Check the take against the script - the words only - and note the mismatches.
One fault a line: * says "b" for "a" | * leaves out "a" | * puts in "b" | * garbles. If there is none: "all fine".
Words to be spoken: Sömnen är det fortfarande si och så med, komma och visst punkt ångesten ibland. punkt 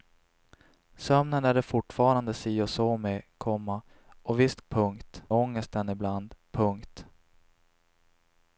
all fine